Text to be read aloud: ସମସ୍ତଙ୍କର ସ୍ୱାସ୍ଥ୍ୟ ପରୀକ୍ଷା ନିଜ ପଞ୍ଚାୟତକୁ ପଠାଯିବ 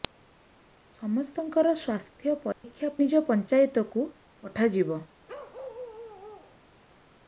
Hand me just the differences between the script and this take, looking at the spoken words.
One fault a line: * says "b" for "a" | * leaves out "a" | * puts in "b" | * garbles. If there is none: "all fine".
all fine